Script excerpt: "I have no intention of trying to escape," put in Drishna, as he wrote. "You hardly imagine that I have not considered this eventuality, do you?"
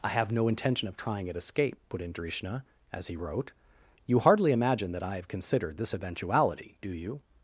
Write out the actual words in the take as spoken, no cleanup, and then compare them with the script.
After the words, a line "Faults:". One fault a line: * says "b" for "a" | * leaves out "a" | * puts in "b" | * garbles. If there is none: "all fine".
"I have no intention of trying at escape," put in Drishna, as he wrote. "You hardly imagine that I have considered this eventuality, do you?"
Faults:
* says "at" for "to"
* leaves out "not"